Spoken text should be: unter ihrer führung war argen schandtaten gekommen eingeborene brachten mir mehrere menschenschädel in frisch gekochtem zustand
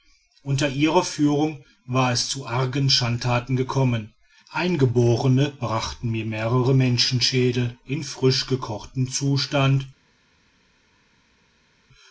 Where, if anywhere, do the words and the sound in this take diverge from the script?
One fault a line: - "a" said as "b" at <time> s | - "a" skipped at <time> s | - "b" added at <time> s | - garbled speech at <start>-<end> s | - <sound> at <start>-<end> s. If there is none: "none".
- "es zu" added at 2.1 s